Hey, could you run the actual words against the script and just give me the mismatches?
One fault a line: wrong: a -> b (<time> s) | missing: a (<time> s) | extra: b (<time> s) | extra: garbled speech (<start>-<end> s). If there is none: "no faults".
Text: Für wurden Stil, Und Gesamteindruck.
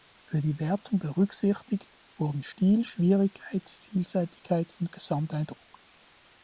extra: die Wertung berücksichtigt (0.4 s)
extra: Schwierigkeit Vielseitigkeit (2.8 s)